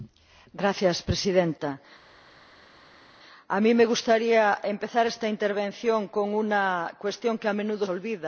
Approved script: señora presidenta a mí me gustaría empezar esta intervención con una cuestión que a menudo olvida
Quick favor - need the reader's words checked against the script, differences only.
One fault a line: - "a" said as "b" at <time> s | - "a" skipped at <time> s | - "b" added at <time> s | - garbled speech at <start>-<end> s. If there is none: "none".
none